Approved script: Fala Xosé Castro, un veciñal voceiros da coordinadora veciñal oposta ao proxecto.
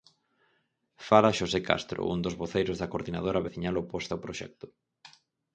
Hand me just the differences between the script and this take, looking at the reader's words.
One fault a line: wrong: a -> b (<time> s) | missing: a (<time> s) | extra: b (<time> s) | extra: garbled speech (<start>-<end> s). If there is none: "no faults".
wrong: veciñal -> dos (2.2 s)